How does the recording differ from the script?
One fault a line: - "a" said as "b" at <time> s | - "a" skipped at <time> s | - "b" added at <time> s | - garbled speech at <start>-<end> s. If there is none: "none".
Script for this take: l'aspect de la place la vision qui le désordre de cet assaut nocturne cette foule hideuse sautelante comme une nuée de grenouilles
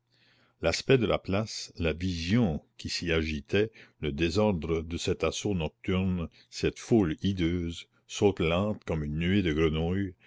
- "s'y agitait" added at 2.9 s